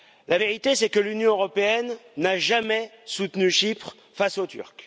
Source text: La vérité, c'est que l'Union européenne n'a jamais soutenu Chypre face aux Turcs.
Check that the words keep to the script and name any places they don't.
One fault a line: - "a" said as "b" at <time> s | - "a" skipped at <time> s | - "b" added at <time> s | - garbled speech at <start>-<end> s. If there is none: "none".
none